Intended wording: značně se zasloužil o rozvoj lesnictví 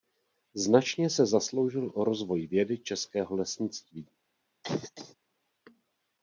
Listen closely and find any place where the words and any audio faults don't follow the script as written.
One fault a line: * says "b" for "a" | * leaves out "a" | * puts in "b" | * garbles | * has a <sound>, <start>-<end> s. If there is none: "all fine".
* puts in "vědy českého"
* has a cough, 4.6-5.2 s